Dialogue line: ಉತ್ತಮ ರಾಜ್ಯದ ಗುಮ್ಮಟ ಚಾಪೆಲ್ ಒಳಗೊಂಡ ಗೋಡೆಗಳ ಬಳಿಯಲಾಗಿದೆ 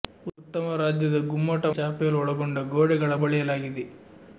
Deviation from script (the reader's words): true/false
false